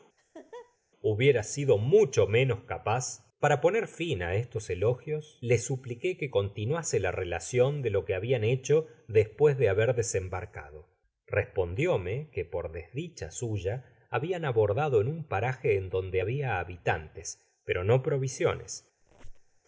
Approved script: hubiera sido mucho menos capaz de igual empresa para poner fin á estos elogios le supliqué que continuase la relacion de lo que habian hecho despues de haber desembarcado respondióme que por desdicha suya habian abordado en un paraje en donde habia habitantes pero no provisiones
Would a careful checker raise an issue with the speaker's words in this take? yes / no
yes